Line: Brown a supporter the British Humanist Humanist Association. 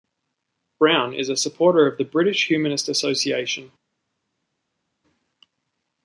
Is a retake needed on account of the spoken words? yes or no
yes